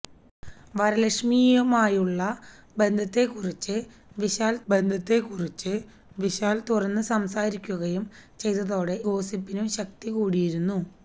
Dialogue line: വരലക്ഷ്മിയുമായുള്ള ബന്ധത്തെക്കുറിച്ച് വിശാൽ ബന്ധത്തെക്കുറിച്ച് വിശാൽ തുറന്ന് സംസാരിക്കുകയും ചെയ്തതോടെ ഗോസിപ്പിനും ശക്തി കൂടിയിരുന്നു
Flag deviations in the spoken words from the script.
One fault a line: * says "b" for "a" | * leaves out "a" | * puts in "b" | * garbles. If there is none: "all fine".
all fine